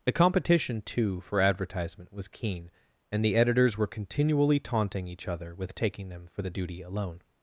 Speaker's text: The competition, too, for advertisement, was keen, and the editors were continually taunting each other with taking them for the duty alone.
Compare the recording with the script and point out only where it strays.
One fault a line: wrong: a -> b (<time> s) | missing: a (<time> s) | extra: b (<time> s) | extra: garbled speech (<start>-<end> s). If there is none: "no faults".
no faults